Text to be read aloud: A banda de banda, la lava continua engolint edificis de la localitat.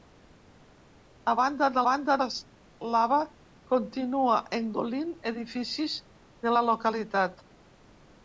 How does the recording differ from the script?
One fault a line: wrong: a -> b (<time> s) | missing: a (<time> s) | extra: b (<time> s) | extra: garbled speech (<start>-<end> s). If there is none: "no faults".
no faults